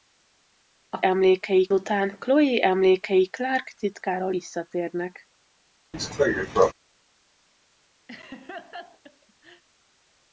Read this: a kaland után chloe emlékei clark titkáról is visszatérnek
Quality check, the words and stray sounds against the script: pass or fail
fail